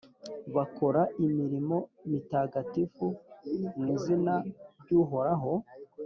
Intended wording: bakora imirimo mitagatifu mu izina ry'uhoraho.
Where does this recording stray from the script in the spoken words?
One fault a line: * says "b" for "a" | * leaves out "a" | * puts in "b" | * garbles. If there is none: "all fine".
all fine